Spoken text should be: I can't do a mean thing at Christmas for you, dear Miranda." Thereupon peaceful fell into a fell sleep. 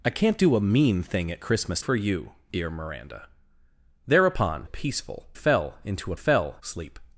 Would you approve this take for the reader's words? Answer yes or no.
yes